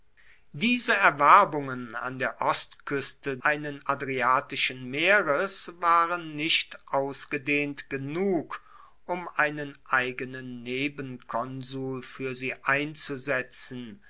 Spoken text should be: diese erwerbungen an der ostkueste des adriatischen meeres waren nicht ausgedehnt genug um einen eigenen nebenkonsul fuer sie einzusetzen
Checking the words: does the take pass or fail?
fail